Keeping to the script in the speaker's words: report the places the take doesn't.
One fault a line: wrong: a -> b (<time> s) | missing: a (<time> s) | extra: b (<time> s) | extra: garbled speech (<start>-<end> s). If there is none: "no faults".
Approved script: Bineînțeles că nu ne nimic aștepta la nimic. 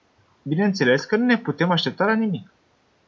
wrong: nimic -> putem (1.4 s)